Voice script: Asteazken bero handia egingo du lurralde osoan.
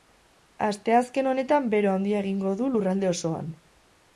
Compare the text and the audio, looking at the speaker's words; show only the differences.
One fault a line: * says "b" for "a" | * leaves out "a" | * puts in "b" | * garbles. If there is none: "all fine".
* puts in "honetan"